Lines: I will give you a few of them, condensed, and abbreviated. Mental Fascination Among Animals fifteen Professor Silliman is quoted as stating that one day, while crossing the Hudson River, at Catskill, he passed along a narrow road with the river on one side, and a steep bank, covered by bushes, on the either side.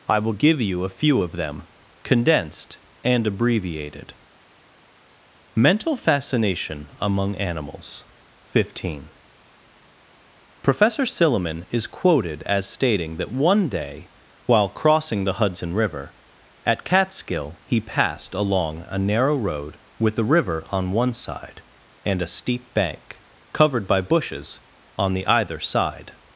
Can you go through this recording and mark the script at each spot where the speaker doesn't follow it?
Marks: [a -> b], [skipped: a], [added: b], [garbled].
I will give you a few of them, condensed, and abbreviated. Mental Fascination Among Animals fifteen Professor Silliman is quoted as stating that one day, while crossing the Hudson River, at Catskill, he passed along a narrow road with the river on one side, and a steep bank, covered by bushes, on the either side.